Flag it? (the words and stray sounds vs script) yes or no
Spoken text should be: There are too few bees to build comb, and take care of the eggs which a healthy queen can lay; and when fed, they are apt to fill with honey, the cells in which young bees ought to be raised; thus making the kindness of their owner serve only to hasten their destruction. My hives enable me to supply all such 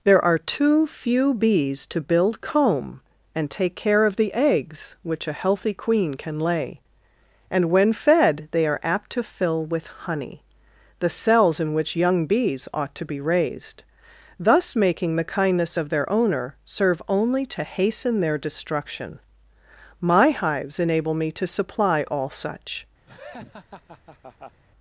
yes